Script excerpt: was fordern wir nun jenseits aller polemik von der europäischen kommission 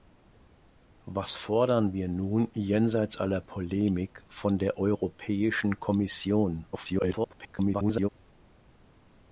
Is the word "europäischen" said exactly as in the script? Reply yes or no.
yes